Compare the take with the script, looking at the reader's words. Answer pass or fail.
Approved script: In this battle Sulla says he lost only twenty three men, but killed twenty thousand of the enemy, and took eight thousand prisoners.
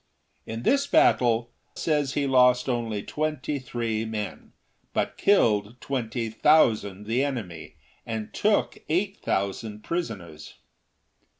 fail